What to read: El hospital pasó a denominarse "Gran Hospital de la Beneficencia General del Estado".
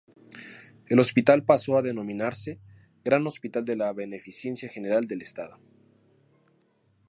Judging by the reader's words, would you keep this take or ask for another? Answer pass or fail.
pass